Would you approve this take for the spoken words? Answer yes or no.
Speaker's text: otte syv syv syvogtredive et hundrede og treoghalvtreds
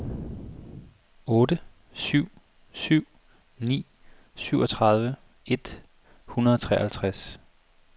no